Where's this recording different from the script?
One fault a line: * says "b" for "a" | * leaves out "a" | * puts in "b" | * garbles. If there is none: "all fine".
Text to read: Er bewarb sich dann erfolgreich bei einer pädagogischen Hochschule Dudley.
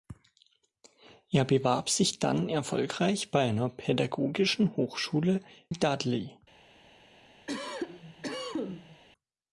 all fine